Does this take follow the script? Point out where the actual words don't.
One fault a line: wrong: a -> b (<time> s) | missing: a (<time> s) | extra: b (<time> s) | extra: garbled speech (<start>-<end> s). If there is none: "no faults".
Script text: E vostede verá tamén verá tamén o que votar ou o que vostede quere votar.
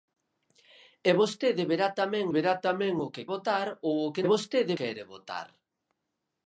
no faults